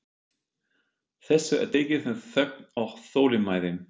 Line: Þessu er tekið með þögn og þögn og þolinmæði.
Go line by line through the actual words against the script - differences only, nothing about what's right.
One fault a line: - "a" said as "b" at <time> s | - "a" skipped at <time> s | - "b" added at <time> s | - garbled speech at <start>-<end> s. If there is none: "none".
- "þögn og" skipped at 3.0 s